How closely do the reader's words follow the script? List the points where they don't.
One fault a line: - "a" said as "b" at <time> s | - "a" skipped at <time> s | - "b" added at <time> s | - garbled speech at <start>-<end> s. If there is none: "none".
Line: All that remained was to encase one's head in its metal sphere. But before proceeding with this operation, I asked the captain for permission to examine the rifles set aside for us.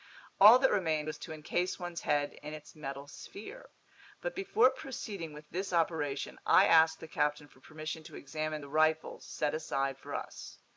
none